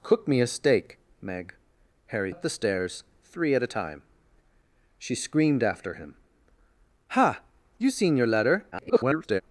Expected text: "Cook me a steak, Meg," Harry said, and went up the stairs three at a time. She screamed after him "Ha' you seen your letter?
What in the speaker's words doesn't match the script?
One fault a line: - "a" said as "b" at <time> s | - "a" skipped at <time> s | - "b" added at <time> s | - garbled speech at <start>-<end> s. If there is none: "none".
- "said and went" skipped at 2.3 s
- garbled speech at 8.7-9.4 s